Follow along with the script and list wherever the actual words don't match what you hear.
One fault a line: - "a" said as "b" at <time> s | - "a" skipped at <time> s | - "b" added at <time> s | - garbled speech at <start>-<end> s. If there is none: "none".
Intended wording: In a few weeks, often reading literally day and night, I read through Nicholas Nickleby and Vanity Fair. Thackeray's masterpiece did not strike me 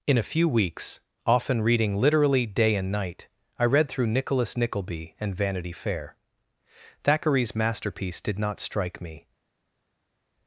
none